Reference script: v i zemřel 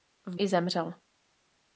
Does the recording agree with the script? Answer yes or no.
yes